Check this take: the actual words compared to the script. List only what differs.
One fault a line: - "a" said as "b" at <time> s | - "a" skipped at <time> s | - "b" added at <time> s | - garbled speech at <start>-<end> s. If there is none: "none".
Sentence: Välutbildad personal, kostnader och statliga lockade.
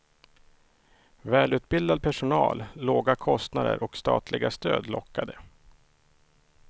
- "låga" added at 2.7 s
- "stöd" added at 4.5 s